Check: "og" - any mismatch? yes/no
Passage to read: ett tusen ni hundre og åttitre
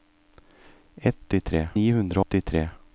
yes